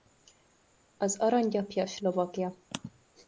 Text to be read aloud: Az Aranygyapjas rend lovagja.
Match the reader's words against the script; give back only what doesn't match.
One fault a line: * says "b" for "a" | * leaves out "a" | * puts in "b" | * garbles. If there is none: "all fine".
* leaves out "rend"